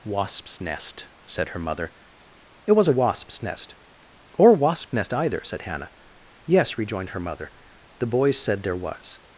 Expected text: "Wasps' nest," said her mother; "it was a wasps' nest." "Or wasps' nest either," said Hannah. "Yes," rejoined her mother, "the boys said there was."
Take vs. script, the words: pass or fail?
fail